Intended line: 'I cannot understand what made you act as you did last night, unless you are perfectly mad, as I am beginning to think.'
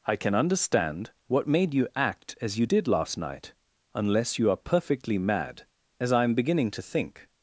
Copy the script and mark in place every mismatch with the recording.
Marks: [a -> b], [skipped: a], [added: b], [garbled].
'I [cannot -> can] understand what made you act as you did last night, unless you are perfectly mad, as I am beginning to think.'